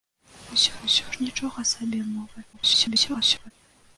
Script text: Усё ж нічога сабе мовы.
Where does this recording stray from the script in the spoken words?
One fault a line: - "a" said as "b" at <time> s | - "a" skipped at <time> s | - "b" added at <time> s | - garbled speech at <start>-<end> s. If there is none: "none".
- "усё" added at 0.9 s
- garbled speech at 2.5-3.5 s